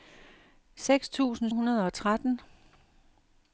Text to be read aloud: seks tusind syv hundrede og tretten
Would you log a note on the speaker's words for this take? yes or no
yes